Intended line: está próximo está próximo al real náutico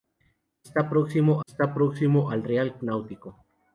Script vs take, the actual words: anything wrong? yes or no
no